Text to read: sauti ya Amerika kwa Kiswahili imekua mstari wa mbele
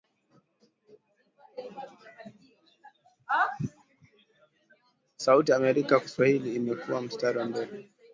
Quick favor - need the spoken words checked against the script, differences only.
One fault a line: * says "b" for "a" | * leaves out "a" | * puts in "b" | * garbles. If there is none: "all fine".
* leaves out "kwa"